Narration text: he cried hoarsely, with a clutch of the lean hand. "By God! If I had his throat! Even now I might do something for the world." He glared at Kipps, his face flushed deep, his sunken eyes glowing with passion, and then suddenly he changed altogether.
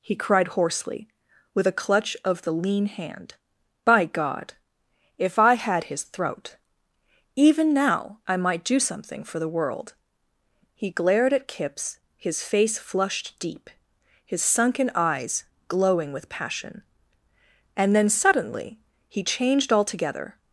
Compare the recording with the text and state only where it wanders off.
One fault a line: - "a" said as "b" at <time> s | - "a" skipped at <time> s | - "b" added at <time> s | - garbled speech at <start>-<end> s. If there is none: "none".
none